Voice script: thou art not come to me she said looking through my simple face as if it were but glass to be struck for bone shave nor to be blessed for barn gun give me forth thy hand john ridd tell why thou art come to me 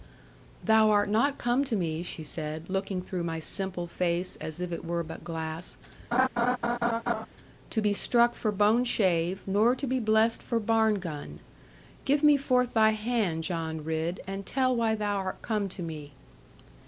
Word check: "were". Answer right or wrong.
right